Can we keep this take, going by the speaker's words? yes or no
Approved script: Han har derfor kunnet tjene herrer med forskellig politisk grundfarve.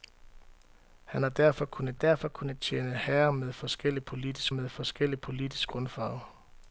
no